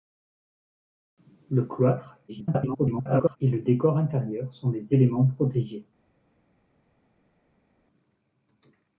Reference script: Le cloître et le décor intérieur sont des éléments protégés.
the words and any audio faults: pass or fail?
fail